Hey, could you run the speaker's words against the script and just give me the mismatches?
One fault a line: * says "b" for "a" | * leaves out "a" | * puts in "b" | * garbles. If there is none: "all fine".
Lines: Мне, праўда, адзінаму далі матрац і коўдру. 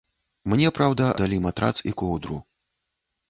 * leaves out "адзінаму"